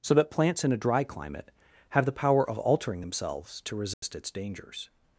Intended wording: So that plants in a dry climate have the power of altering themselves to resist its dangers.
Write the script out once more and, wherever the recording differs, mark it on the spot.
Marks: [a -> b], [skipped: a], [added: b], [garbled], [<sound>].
So that plants in a dry climate have the power of altering themselves to resist [dropout] its dangers.